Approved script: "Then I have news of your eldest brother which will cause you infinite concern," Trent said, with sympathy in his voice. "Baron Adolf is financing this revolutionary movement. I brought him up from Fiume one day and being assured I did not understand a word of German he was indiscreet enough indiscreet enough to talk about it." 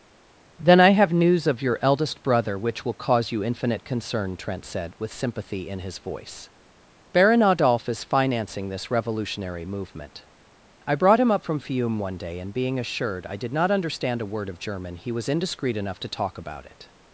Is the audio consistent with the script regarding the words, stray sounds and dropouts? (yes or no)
no